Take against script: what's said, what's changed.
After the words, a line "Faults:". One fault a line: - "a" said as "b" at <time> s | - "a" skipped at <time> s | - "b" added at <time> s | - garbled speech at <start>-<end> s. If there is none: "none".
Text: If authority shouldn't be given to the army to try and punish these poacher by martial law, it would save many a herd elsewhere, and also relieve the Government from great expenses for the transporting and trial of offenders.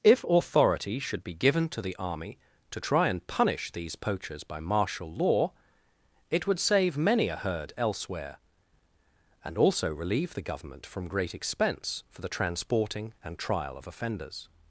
If authority should be given to the army to try and punish these poachers by martial law, it would save many a herd elsewhere, and also relieve the Government from great expense for the transporting and trial of offenders.
Faults:
- "shouldn't" said as "should" at 1.0 s
- "poacher" said as "poachers" at 4.0 s
- "expenses" said as "expense" at 11.3 s